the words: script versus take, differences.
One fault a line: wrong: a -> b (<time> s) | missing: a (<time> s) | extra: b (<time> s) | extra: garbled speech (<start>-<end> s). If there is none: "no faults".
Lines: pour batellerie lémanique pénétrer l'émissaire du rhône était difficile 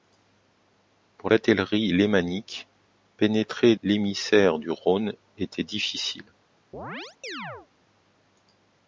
no faults